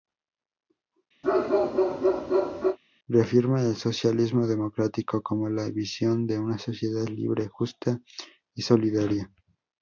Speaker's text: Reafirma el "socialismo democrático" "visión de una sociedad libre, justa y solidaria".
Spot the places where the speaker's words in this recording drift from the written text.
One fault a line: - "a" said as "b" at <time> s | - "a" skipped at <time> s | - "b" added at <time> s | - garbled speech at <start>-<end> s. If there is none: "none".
- "como la" added at 5.2 s